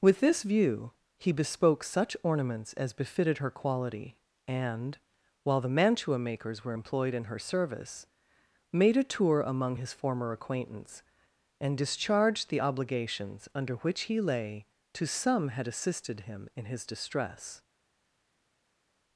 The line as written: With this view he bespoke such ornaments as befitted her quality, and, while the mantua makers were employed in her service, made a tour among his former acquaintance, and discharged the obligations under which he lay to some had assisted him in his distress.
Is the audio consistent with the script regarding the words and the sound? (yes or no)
yes